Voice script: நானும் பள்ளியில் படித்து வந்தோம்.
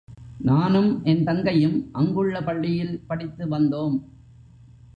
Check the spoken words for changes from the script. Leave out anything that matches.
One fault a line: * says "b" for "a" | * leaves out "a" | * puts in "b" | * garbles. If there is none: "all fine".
* puts in "என் தங்கையும் அங்குள்ள"